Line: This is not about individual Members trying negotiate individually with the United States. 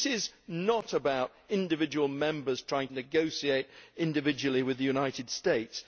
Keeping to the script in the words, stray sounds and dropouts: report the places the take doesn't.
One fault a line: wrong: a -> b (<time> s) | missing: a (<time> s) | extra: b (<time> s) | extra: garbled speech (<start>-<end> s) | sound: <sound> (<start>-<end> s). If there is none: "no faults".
no faults